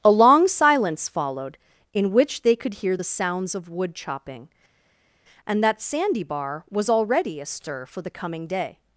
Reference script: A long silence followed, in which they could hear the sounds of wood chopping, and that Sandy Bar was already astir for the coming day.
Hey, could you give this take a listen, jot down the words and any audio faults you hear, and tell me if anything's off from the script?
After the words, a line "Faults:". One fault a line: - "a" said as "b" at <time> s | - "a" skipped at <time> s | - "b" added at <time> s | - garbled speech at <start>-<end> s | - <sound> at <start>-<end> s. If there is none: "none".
A long silence followed, in which they could hear the sounds of wood chopping, and that Sandy Bar was already astir for the coming day.
Faults:
none